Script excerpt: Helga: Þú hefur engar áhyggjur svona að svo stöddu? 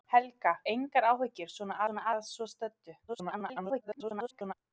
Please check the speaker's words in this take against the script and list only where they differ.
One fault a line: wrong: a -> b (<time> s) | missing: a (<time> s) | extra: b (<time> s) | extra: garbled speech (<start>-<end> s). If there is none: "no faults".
missing: Þú hefur (0.5 s)
extra: svona (1.9 s)
extra: garbled speech (3.1-4.5 s)